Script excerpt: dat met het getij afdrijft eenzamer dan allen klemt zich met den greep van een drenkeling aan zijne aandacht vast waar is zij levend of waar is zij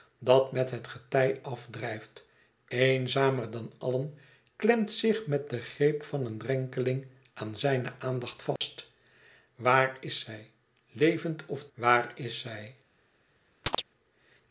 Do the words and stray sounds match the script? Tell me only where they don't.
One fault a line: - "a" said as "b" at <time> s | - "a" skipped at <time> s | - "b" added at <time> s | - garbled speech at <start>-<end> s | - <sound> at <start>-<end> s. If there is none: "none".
- dropout at 8.6-8.6 s
- chirp at 13.6-13.8 s